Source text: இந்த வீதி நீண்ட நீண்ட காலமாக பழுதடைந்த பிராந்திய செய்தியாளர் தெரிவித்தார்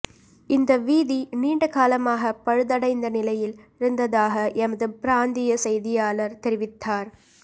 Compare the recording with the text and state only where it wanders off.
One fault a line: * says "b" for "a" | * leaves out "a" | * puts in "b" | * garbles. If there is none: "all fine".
* leaves out "நீண்ட"
* puts in "நிலையில் இருந்ததாக எமது"